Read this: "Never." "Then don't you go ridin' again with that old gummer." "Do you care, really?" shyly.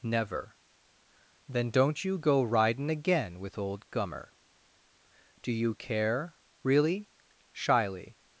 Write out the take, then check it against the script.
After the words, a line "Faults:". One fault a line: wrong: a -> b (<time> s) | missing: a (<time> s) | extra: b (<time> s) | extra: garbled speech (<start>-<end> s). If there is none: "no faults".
"Never." "Then don't you go ridin' again with old gummer." "Do you care, really?" shyly.
Faults:
missing: that (3.6 s)